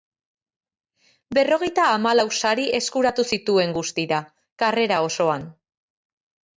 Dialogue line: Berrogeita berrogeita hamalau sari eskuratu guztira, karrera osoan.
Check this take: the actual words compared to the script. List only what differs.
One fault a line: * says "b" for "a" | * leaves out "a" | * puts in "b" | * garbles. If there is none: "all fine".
* leaves out "berrogeita"
* puts in "zituen"